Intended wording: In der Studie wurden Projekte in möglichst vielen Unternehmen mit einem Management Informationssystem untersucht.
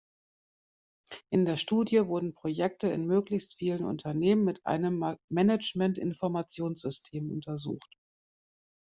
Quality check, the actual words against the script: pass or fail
pass